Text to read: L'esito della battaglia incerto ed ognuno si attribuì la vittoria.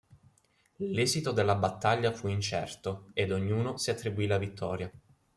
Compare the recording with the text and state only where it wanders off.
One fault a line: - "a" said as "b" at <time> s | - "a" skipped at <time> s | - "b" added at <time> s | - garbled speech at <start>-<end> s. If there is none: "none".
- "fu" added at 2.1 s